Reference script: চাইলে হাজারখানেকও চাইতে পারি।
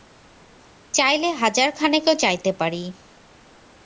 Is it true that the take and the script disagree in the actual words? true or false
false